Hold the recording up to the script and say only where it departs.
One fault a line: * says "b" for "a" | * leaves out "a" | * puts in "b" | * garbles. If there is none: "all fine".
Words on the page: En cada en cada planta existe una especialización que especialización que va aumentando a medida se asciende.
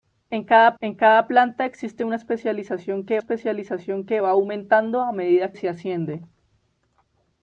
all fine